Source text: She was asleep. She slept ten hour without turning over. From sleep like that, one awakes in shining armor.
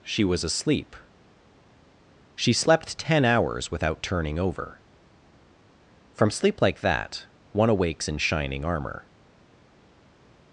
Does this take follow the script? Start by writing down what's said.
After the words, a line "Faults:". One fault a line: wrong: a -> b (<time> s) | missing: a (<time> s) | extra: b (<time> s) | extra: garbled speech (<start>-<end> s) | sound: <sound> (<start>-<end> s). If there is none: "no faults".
She was asleep. She slept ten hours without turning over. From sleep like that, one awakes in shining armor.
Faults:
wrong: hour -> hours (3.2 s)